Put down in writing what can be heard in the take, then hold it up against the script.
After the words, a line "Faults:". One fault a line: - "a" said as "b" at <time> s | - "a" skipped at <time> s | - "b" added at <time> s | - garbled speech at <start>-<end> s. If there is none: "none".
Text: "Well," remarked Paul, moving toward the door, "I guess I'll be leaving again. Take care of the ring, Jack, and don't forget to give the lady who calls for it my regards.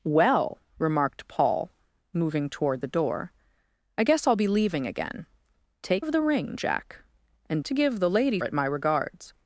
"Well," remarked Paul, moving toward the door, "I guess I'll be leaving again. Take of the ring, Jack, and to give the lady it my regards.
Faults:
- "care" skipped at 6.0 s
- "don't forget" skipped at 7.6 s
- "who calls for" skipped at 8.4 s